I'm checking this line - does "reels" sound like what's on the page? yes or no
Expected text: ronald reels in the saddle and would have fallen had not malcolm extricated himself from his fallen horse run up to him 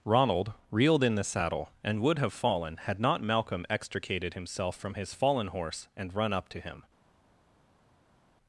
no